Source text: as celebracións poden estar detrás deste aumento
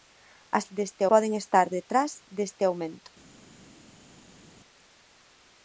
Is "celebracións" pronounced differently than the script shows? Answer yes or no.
yes